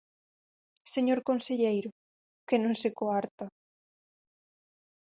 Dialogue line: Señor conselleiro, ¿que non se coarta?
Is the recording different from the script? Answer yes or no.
no